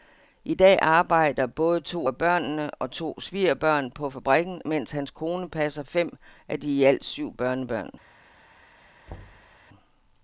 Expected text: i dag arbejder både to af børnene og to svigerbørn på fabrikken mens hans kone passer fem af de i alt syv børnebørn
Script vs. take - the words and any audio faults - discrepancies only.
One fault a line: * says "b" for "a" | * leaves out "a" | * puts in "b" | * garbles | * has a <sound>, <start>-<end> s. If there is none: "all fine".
* has a thud, 9.1-9.6 s